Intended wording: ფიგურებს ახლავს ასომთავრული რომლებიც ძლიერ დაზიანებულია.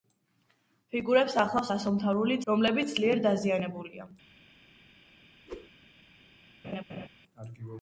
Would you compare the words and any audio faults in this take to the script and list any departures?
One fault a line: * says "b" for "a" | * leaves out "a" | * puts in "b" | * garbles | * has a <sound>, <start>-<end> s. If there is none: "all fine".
* has a whoosh, 5.5-5.7 s
* has a laugh, 6.6-7.1 s